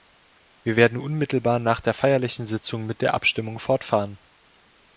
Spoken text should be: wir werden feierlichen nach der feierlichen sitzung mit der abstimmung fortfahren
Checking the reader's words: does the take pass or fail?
fail